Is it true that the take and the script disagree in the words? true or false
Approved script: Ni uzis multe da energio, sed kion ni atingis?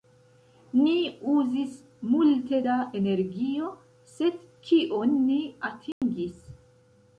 false